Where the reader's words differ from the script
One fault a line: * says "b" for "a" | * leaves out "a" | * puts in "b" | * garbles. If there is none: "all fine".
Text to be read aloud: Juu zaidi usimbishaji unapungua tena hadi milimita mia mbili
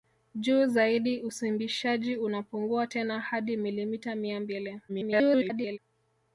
* garbles